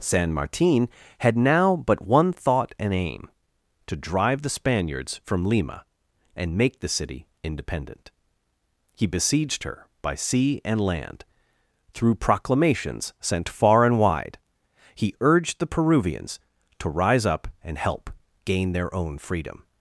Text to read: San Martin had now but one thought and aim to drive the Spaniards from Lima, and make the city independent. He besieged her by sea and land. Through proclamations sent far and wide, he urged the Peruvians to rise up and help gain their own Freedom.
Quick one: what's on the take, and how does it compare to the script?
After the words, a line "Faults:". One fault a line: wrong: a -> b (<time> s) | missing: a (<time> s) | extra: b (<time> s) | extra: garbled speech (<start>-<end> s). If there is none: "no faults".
San Martin had now but one thought and aim to drive the Spaniards from Lima, and make the city independent. He besieged her by sea and land. Through proclamations sent far and wide, he urged the Peruvians to rise up and help gain their own Freedom.
Faults:
no faults